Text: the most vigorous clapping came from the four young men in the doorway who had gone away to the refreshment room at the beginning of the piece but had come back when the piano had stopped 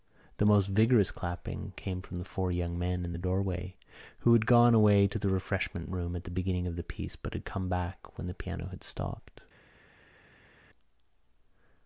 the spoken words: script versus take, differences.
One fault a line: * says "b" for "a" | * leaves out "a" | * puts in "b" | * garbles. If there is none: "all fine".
all fine